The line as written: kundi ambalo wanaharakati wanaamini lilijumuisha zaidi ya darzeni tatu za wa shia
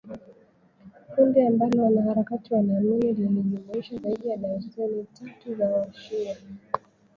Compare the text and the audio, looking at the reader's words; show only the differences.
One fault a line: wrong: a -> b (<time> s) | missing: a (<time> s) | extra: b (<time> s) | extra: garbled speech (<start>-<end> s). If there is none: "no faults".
no faults